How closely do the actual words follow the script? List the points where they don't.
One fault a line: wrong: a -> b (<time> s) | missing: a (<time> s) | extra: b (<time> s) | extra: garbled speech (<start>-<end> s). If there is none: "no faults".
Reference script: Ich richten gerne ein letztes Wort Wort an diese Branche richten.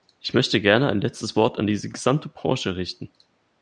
wrong: richten -> möchte (0.3 s)
missing: Wort (1.6 s)
extra: gesamte (1.9 s)